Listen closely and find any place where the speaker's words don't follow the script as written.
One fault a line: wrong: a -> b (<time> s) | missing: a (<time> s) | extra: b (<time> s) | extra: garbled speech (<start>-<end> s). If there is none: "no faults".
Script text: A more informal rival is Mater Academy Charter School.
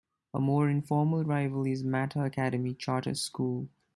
no faults